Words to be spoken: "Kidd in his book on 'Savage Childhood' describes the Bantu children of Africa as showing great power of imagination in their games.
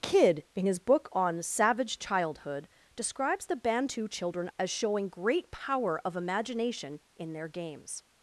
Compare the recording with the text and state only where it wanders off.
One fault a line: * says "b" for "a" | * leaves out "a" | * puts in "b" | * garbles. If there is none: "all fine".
* leaves out "of Africa"